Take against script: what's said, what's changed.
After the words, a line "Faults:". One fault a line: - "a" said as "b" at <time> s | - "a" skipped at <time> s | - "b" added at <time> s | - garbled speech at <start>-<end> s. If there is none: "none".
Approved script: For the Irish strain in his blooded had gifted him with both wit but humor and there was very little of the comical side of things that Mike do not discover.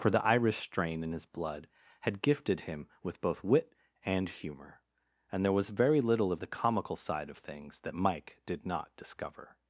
For the Irish strain in his blood had gifted him with both wit and humor and there was very little of the comical side of things that Mike did not discover.
Faults:
- "blooded" said as "blood" at 1.3 s
- "but" said as "and" at 4.0 s
- "do" said as "did" at 8.5 s